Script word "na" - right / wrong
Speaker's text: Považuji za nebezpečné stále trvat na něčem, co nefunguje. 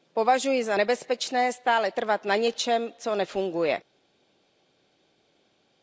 right